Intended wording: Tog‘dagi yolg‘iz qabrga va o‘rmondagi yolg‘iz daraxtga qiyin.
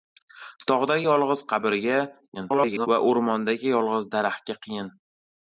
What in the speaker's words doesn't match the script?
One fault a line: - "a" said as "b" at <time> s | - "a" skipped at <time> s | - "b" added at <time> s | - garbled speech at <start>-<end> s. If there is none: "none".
- garbled speech at 2.3-2.9 s